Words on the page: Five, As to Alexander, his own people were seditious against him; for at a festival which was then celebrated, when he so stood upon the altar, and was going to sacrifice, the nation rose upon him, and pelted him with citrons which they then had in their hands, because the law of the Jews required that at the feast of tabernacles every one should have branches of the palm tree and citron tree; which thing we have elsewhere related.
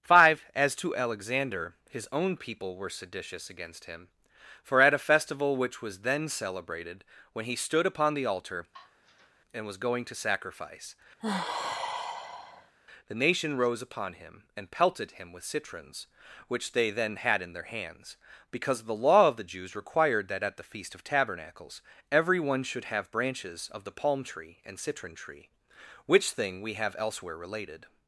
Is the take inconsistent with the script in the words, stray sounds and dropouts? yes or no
yes